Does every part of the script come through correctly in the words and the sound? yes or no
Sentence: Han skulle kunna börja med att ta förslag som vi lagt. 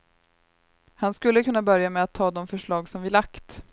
no